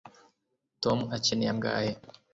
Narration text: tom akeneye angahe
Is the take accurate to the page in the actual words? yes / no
yes